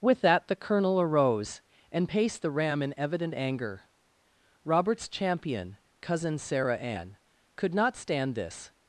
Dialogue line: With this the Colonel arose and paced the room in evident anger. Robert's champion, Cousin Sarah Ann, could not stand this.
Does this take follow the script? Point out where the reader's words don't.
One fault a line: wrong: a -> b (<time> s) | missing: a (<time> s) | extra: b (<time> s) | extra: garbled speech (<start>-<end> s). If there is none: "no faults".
wrong: this -> that (0.2 s)
wrong: room -> ram (2.5 s)